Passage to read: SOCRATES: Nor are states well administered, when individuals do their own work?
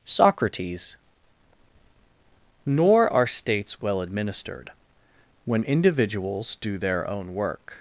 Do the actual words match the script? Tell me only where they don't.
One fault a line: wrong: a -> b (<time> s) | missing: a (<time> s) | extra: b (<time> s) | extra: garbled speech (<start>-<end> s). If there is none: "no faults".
no faults